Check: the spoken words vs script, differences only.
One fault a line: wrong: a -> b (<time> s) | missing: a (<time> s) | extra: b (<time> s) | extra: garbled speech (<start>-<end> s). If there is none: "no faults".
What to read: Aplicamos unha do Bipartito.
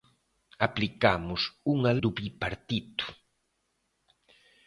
no faults